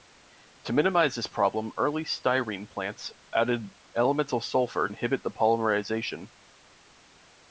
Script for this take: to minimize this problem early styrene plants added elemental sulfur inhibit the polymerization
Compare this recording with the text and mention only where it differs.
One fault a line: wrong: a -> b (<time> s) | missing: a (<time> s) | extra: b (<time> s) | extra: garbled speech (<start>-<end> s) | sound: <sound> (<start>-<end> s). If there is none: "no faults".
no faults